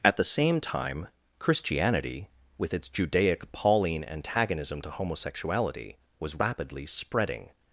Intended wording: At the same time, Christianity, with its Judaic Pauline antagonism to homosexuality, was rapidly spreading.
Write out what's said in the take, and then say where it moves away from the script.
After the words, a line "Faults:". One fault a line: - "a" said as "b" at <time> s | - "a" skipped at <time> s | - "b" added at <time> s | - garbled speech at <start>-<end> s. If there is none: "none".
At the same time, Christianity, with its Judaic Pauline antagonism to homosexuality, was rapidly spreading.
Faults:
none